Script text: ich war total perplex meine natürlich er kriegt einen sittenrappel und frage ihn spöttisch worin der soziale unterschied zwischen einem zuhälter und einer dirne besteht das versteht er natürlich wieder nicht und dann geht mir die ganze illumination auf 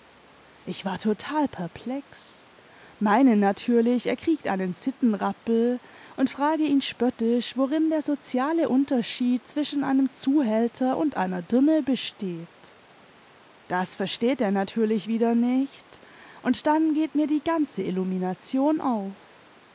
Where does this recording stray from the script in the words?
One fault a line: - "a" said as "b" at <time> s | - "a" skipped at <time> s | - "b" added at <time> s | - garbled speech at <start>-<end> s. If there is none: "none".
none